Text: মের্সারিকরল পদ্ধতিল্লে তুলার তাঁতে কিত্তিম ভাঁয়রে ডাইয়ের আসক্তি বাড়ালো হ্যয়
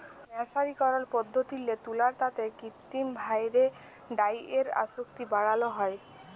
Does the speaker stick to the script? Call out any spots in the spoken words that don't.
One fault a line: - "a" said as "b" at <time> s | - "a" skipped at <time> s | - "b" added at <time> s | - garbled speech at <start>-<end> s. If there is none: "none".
none